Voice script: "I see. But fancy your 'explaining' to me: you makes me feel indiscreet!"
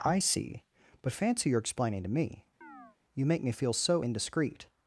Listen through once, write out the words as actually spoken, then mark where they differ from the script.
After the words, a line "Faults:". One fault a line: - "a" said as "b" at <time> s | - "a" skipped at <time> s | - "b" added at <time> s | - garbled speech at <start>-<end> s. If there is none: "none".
"I see. But fancy your 'explaining' to me: you make me feel so indiscreet!"
Faults:
- "makes" said as "make" at 3.3 s
- "so" added at 3.7 s